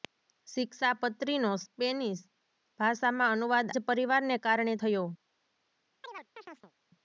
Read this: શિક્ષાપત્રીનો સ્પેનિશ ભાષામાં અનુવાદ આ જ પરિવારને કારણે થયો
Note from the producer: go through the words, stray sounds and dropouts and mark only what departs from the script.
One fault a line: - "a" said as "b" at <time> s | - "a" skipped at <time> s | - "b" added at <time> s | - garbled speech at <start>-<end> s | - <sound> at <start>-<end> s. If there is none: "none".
- "આ" skipped at 3.7 s
- chirp at 6.0-6.7 s